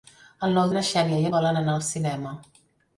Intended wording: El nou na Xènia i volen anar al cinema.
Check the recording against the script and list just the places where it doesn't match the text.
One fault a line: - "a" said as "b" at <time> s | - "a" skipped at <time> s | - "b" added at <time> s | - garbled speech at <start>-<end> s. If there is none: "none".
none